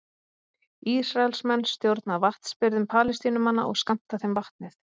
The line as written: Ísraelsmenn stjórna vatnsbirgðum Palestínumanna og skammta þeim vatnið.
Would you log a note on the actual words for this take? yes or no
no